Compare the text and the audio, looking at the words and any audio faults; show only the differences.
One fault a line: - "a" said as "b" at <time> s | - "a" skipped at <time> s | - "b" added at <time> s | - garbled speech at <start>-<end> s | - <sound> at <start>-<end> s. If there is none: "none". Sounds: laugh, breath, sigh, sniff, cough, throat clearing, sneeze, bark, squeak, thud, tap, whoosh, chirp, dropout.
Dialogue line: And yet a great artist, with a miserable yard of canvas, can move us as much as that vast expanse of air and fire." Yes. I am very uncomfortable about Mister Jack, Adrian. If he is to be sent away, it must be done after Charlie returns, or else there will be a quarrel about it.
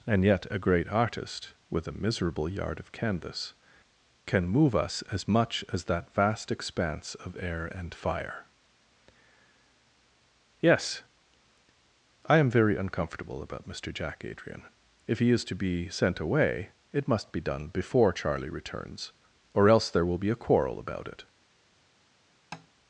- "after" said as "before" at 17.7 s
- tap at 22.5-22.7 s